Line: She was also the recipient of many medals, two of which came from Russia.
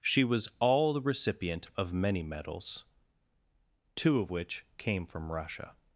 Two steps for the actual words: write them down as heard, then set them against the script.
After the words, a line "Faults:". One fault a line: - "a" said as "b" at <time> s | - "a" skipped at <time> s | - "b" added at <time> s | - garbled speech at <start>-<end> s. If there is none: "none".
She was all the recipient of many medals, two of which came from Russia.
Faults:
- "also" said as "all" at 0.6 s